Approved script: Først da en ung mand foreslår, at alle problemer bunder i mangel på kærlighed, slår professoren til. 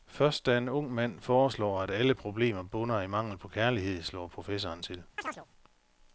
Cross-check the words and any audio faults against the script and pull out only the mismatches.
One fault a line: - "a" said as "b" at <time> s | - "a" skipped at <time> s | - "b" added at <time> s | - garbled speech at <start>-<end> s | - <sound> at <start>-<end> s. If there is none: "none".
- chirp at 5.2-5.5 s